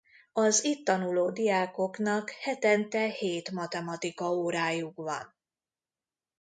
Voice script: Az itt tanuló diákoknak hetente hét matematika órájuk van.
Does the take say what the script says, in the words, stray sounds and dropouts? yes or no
yes